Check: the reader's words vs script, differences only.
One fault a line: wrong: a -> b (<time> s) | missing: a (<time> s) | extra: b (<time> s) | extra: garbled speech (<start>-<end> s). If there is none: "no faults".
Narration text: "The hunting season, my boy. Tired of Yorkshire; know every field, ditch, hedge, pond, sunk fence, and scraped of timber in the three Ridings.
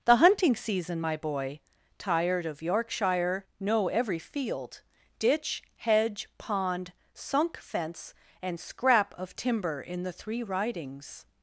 wrong: scraped -> scrap (8.6 s)